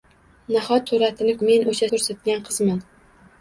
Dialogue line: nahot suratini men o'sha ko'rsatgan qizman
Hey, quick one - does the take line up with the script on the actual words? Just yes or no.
yes